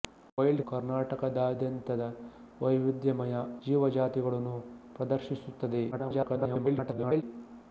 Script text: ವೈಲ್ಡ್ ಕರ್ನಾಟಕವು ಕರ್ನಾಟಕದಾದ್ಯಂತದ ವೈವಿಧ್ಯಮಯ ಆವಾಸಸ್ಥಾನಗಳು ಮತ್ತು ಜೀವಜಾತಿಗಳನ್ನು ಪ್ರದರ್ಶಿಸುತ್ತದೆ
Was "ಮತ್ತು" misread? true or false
true